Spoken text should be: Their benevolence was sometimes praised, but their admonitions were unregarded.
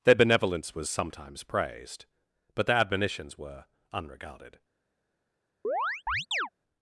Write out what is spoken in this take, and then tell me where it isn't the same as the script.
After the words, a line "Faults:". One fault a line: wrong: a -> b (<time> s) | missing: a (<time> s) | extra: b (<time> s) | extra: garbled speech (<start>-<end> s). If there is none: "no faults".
Their benevolence was sometimes praised, but their admonitions were unregarded.
Faults:
no faults